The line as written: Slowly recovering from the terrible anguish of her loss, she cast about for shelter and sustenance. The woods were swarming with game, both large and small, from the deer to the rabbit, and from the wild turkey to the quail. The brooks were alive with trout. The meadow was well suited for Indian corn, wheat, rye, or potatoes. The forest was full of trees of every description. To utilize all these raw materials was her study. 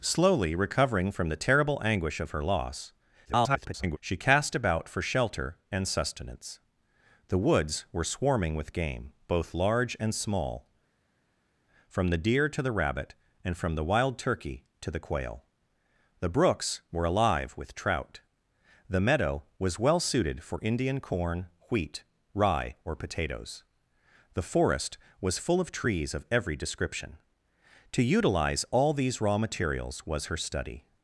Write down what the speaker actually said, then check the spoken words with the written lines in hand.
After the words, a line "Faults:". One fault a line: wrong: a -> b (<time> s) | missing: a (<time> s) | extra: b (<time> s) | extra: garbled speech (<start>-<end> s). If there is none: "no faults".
Slowly recovering from the terrible anguish of her loss, [garbled] she cast about for shelter and sustenance. The woods were swarming with game, both large and small, from the deer to the rabbit, and from the wild turkey to the quail. The brooks were alive with trout. The meadow was well suited for Indian corn, wheat, rye, or potatoes. The forest was full of trees of every description. To utilize all these raw materials was her study.
Faults:
extra: garbled speech (3.2-4.0 s)